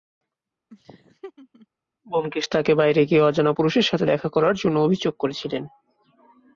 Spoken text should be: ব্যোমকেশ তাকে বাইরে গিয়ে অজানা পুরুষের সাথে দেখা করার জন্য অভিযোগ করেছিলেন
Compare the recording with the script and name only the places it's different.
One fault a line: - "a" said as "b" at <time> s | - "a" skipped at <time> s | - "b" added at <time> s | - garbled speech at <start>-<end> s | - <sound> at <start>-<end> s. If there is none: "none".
- laugh at 0.7-1.7 s